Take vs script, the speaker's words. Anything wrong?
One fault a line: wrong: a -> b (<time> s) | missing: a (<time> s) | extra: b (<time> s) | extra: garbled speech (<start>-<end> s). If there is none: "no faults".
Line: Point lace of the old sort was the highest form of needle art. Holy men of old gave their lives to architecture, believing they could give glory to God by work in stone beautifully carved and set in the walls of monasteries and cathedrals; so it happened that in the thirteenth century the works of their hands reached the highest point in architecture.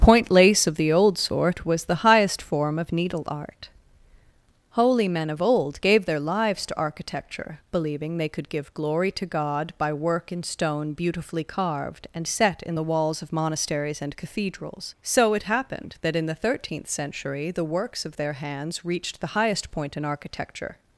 no faults